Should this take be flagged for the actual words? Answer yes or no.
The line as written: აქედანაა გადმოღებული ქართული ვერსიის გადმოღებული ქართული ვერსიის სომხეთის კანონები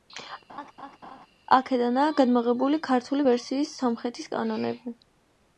yes